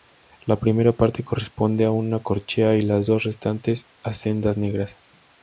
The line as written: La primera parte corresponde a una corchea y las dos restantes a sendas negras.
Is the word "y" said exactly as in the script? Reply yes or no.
yes